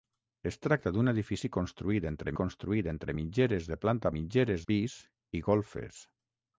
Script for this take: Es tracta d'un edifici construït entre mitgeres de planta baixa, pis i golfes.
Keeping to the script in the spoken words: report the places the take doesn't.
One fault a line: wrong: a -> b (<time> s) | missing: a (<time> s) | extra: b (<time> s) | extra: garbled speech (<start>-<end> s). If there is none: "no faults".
extra: construït entre (2.4 s)
wrong: baixa -> mitgeres (4.2 s)